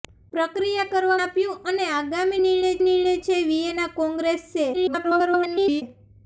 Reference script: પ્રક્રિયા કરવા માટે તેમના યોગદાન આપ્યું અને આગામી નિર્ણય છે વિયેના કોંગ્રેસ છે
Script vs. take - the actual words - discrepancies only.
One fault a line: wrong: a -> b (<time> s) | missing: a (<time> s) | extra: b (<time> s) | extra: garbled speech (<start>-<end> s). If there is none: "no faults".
missing: માટે તેમના યોગદાન (1.2 s)
extra: નિર્ણય (2.8 s)
extra: garbled speech (4.7-5.8 s)